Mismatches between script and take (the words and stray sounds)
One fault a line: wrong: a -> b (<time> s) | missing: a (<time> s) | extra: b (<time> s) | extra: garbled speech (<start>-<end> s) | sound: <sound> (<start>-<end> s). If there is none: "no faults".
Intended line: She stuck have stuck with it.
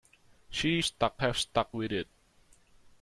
no faults